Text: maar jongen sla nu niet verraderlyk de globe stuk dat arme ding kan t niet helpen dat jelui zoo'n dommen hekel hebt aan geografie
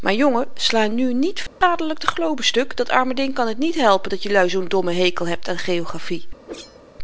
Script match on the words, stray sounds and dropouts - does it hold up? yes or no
no